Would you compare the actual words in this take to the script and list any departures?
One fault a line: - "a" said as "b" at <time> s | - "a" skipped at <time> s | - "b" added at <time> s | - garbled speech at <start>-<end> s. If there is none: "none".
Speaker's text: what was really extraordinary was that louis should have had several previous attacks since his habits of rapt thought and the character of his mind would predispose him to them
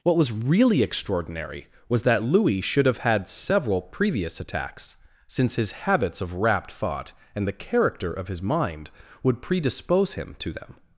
none